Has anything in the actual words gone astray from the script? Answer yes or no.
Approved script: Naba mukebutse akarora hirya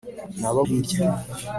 yes